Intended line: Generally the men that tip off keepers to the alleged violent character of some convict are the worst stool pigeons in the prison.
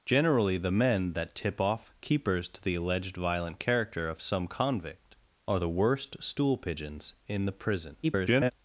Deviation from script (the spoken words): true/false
true